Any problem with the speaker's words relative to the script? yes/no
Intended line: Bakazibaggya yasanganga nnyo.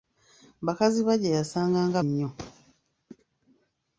no